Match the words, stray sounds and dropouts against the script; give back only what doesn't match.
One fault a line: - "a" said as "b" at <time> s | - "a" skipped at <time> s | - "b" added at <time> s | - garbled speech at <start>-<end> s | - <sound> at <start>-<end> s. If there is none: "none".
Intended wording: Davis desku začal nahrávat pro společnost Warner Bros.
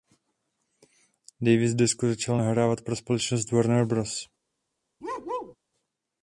- bark at 5.0-5.6 s